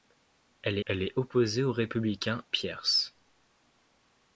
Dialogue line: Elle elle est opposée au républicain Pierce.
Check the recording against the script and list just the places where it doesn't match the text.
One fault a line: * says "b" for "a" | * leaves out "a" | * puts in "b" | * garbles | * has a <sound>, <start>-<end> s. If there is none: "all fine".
all fine